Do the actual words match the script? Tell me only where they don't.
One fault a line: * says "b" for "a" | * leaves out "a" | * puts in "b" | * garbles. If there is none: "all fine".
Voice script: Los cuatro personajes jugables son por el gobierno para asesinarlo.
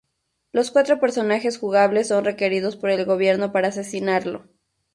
* puts in "requeridos"